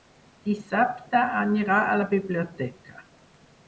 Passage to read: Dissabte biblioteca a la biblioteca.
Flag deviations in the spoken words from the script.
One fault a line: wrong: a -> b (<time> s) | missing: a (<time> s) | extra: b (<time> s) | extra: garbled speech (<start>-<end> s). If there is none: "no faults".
wrong: biblioteca -> anirà (1.4 s)